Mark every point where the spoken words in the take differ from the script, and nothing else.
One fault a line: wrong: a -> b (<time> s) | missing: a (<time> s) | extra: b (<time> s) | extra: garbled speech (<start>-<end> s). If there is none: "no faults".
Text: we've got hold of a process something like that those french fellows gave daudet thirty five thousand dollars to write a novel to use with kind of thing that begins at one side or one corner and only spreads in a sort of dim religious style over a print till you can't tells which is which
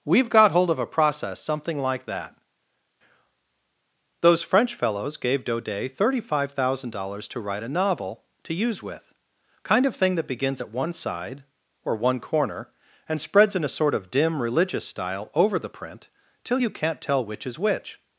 missing: only (13.2 s)
wrong: a -> the (15.6 s)
wrong: tells -> tell (17.0 s)